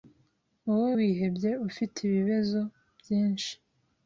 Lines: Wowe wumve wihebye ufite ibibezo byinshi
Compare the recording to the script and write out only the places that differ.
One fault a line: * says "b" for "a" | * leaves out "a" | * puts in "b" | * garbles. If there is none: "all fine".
* leaves out "wumve"